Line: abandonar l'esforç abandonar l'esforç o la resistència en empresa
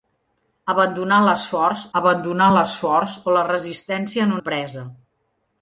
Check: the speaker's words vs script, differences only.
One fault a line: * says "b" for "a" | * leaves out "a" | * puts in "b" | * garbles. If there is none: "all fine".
all fine